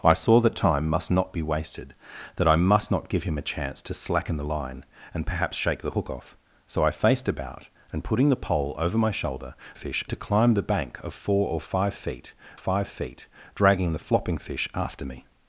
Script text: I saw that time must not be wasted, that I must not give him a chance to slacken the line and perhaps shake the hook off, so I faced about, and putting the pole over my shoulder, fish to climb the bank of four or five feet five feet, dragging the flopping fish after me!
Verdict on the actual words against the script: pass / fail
pass